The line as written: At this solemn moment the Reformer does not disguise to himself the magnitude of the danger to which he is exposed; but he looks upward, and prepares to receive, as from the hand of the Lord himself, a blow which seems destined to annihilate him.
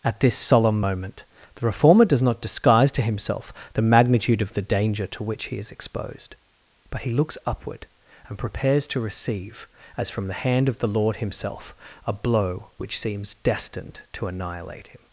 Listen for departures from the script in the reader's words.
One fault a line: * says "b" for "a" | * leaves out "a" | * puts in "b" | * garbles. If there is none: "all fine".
all fine